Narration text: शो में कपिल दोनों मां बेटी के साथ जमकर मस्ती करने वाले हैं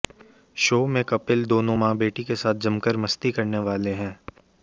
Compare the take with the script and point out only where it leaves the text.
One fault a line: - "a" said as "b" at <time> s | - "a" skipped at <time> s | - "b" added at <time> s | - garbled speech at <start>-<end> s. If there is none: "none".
none